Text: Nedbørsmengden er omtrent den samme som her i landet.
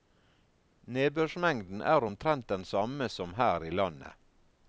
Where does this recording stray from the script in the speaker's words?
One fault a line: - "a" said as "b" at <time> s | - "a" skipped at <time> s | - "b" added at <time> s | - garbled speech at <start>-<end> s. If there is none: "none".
none